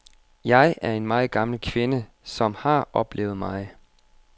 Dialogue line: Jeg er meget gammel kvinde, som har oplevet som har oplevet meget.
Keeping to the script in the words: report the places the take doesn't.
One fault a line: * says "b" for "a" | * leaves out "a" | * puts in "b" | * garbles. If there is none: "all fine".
* puts in "en"
* leaves out "som har oplevet"